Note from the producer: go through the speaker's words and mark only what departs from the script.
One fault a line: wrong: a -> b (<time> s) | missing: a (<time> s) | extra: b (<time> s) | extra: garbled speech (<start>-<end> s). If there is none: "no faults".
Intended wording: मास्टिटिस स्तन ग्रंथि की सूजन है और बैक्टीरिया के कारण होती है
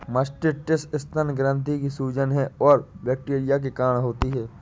no faults